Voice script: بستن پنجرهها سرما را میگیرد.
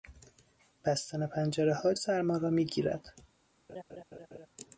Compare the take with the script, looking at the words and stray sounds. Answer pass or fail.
fail